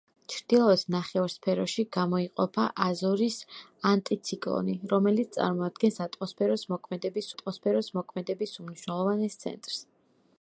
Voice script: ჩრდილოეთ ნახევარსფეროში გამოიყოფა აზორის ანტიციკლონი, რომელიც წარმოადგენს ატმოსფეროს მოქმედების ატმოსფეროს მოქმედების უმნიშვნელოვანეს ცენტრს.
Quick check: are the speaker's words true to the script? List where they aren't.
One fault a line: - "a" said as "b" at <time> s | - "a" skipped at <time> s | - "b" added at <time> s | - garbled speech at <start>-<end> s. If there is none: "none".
none